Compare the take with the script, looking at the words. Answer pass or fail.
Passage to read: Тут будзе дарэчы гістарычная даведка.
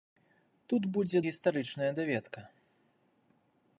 fail